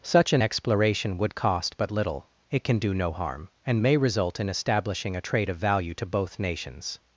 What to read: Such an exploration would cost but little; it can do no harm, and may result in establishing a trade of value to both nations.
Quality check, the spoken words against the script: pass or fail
pass